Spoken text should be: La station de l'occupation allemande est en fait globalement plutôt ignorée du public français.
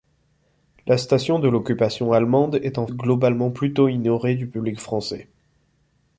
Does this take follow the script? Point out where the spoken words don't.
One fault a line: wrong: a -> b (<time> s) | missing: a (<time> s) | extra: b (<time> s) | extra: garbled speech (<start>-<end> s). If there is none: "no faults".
missing: fait (2.9 s)